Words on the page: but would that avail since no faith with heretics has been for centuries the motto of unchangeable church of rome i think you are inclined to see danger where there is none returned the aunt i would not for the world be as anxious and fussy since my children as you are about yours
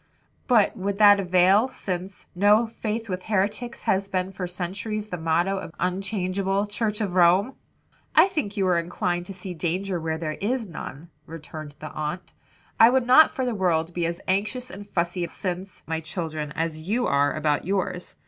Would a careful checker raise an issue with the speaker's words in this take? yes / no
no